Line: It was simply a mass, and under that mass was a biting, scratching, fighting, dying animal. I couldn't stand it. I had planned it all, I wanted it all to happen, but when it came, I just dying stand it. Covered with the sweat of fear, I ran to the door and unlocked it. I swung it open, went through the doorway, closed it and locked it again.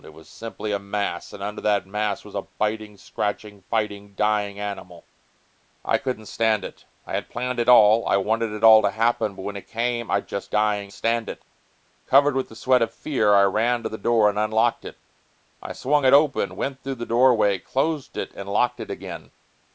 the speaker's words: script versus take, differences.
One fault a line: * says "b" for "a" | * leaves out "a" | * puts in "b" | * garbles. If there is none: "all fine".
all fine